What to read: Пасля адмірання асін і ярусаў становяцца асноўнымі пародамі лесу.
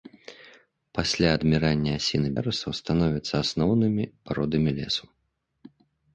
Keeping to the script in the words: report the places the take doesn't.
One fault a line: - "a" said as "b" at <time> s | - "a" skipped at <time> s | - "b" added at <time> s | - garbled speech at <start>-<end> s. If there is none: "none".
none